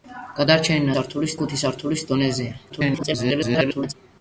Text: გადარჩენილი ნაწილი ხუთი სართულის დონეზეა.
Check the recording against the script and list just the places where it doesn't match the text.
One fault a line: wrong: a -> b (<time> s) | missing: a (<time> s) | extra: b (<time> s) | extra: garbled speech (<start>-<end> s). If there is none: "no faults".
wrong: ნაწილი -> სართულის (1.0 s)
extra: garbled speech (2.7-3.9 s)